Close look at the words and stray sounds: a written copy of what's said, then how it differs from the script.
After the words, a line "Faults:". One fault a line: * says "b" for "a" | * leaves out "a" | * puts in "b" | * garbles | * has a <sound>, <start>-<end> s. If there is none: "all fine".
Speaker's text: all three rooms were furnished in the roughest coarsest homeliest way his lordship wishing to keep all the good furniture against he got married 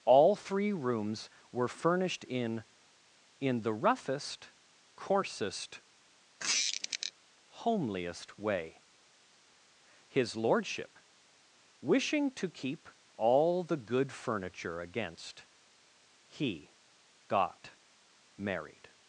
all three rooms were furnished in in the roughest coarsest homeliest way his lordship wishing to keep all the good furniture against he got married
Faults:
* puts in "in"
* has a squeak, 6.4-7.1 s